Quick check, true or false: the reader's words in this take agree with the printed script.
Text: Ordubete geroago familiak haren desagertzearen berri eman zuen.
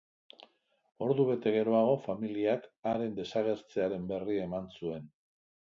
true